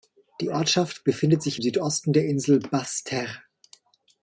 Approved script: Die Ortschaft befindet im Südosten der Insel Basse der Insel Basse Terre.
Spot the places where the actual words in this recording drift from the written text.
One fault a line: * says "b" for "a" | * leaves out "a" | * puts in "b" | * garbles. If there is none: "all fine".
* puts in "sich"
* leaves out "der Insel Basse"